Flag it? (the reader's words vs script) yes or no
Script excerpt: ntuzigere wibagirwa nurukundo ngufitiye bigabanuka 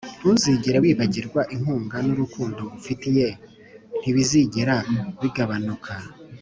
yes